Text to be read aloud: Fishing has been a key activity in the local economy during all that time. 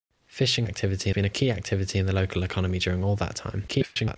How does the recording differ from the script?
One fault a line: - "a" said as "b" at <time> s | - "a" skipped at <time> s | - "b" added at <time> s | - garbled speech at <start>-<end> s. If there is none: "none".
- "has" said as "activity" at 0.6 s
- garbled speech at 3.7-4.2 s